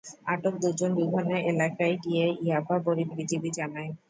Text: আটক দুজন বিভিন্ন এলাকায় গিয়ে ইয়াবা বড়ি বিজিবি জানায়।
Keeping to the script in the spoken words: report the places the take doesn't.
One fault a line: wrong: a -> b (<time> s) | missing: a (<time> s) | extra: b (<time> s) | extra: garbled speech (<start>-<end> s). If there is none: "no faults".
no faults